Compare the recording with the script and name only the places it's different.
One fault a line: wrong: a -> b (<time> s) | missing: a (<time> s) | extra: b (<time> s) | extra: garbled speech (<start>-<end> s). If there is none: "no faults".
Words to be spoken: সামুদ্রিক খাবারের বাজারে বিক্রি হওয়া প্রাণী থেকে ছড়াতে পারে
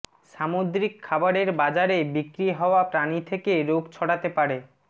extra: রোগ (3.6 s)